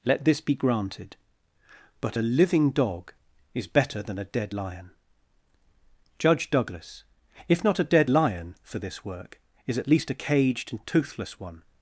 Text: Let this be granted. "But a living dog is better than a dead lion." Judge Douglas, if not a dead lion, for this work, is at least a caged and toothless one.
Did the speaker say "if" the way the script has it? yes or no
yes